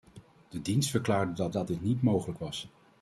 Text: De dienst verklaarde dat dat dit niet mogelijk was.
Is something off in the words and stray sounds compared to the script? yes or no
no